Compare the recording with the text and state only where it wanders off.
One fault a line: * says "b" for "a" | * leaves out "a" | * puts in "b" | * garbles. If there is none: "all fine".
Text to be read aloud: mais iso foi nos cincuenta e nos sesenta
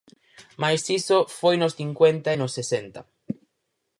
all fine